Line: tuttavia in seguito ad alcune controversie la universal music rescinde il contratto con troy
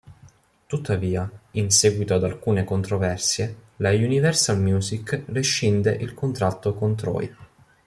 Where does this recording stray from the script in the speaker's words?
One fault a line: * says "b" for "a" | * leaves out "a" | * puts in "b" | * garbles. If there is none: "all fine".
all fine